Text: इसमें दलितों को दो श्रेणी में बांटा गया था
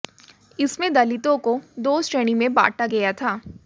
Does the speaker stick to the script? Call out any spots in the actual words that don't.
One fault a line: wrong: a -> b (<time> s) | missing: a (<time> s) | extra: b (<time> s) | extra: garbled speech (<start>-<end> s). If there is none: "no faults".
no faults